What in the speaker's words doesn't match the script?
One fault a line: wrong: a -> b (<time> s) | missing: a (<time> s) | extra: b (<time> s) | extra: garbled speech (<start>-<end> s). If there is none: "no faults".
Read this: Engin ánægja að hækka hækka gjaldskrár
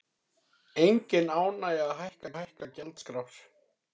no faults